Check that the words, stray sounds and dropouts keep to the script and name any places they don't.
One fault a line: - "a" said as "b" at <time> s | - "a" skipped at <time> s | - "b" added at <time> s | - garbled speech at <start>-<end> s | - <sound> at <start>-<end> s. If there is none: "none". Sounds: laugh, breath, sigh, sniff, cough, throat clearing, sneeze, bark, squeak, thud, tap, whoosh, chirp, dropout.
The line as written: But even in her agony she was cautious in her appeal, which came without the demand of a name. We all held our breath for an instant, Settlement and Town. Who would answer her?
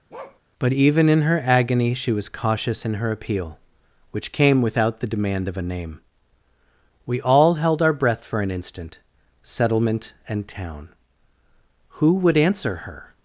- bark at 0.1-0.4 s